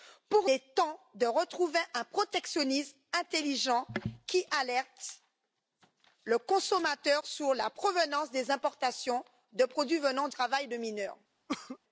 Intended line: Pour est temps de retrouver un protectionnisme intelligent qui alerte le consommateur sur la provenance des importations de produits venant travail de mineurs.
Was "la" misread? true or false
false